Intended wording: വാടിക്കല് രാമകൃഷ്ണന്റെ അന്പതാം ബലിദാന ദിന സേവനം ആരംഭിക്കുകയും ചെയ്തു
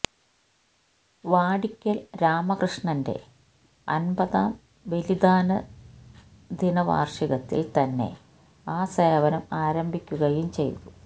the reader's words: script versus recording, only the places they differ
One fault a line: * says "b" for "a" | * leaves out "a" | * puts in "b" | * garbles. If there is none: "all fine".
* puts in "വാര്ഷികത്തില് തന്നെ ആ"